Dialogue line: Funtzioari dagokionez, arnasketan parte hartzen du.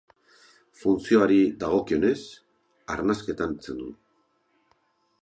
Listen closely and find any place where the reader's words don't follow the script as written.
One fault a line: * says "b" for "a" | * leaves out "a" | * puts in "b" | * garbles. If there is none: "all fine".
* leaves out "parte"